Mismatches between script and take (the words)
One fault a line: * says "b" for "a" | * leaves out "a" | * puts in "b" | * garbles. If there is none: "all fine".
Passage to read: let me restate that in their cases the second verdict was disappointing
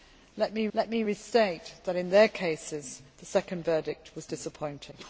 * puts in "let me"